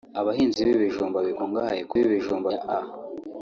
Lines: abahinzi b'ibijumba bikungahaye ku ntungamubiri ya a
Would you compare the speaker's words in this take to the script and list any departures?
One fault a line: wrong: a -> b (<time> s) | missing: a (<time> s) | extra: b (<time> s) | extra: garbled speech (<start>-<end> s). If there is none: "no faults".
wrong: ntungamubiri -> b'ibijumba (2.0 s)